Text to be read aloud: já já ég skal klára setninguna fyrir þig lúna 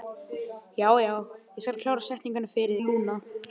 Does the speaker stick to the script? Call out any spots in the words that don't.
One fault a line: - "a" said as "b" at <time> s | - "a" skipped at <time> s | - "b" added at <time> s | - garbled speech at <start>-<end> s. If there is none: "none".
- "þig" skipped at 2.8 s